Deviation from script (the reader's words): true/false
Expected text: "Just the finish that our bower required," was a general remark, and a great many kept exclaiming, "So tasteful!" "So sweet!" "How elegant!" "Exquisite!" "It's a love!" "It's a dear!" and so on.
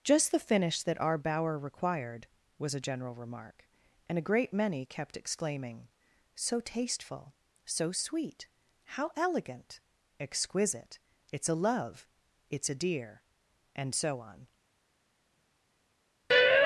false